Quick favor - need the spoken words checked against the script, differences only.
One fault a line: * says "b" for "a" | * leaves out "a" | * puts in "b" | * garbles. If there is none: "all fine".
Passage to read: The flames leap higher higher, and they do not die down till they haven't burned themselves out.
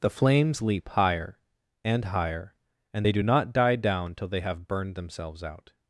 * puts in "and"
* says "have" for "haven't"